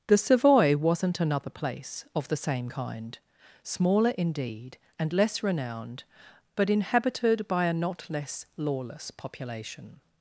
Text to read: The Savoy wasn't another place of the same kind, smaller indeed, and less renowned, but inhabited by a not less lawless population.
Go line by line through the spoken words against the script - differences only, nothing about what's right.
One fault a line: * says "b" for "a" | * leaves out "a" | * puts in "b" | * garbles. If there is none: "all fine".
all fine